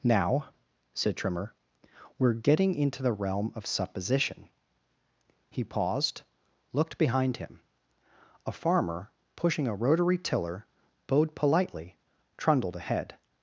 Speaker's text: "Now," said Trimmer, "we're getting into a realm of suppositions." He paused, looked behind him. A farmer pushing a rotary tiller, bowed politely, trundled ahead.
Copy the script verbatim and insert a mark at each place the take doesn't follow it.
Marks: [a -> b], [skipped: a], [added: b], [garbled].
"Now," said Trimmer, "we're getting into [a -> the] realm of [suppositions." -> supposition] He paused, looked behind him. A farmer pushing a rotary tiller, bowed politely, trundled ahead.